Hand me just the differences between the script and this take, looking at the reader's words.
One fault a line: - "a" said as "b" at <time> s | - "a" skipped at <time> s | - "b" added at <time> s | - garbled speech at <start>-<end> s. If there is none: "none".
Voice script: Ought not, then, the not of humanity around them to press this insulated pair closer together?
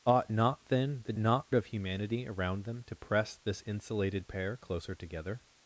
none